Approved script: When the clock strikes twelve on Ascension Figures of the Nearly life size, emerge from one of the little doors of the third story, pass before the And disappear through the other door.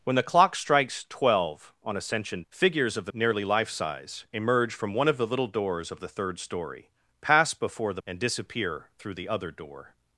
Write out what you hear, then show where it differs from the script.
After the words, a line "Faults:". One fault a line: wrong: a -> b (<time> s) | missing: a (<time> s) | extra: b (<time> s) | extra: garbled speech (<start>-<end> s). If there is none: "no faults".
When the clock strikes twelve on Ascension Figures of the Nearly life size, emerge from one of the little doors of the third story, pass before the And disappear through the other door.
Faults:
no faults